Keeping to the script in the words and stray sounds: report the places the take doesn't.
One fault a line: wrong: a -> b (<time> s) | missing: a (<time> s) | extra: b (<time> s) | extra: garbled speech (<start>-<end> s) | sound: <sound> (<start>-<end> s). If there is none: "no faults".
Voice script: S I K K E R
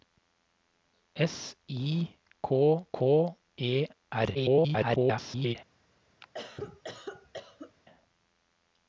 extra: garbled speech (4.3-5.6 s)
sound: cough (6.2-7.7 s)